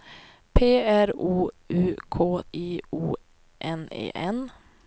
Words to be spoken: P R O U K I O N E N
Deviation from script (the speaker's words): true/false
false